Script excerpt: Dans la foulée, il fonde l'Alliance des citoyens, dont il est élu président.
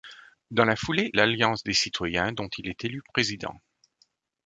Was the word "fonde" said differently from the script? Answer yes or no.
yes